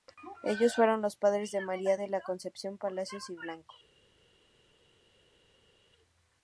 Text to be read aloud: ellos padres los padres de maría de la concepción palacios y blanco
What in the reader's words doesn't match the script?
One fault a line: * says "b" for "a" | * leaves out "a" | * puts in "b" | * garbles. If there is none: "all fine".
* says "fueron" for "padres"